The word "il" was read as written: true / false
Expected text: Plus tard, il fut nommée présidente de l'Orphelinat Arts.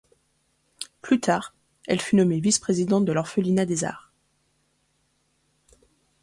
false